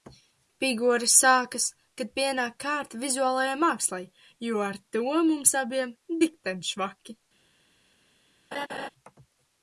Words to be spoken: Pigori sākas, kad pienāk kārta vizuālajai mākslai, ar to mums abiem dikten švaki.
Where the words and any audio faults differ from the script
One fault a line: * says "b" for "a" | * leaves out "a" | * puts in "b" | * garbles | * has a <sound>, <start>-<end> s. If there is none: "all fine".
* puts in "jo"
* has a laugh, 8.5-8.9 s